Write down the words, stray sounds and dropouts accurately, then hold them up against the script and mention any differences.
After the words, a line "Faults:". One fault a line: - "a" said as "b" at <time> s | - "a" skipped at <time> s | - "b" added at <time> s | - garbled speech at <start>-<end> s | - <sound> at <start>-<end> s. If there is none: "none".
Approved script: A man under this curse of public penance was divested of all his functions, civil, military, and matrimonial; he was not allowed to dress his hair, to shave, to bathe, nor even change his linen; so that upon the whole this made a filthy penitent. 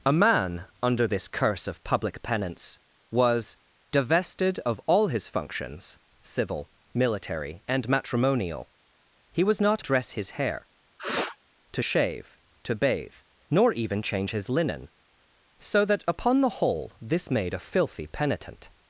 A man under this curse of public penance was divested of all his functions, civil, military, and matrimonial; he was not dress his hair, to shave, to bathe, nor even change his linen; so that upon the whole this made a filthy penitent.
Faults:
- "allowed to" skipped at 9.8 s
- sniff at 11.0-11.4 s